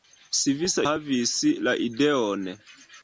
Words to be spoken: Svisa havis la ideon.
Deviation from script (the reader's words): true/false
false